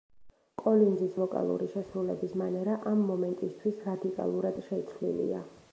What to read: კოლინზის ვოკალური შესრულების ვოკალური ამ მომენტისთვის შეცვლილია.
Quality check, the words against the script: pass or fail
fail